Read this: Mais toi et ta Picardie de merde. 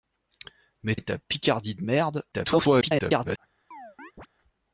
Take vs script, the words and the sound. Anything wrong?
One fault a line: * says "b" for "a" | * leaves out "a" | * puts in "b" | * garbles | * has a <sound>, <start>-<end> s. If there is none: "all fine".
* leaves out "toi"
* garbles
* has a chirp, 3.7-4.3 s